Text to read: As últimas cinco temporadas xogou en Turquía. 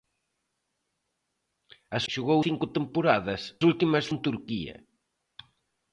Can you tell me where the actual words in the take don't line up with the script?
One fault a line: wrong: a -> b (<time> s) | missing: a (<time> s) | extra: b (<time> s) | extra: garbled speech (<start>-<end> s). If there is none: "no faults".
wrong: últimas -> xogou (2.1 s)
wrong: xogou -> últimas (3.7 s)